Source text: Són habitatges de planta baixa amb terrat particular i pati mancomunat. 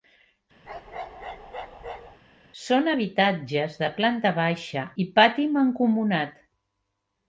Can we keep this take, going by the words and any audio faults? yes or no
no